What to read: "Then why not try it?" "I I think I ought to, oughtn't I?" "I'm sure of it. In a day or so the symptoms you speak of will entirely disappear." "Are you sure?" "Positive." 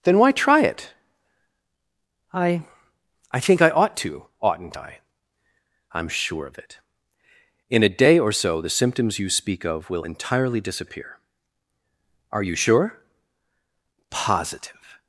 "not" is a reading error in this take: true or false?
true